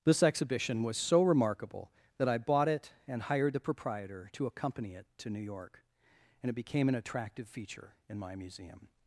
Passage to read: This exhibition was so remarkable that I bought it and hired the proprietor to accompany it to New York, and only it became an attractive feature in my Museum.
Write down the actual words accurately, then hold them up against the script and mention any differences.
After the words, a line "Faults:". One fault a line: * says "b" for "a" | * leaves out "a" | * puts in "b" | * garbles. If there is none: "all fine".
This exhibition was so remarkable that I bought it and hired the proprietor to accompany it to New York, and it became an attractive feature in my Museum.
Faults:
* leaves out "only"